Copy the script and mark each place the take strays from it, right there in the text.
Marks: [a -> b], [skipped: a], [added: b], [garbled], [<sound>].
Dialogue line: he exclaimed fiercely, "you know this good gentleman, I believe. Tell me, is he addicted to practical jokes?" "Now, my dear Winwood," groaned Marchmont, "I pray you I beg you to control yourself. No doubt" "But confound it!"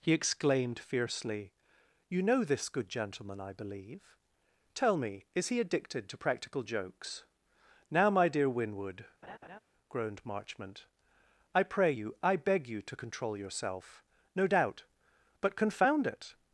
he exclaimed fiercely, "you know this good gentleman, I believe. Tell me, is he addicted to practical jokes?" "Now, my dear Winwood," [laugh] groaned Marchmont, "I pray you I beg you to control yourself. No doubt" "But confound it!"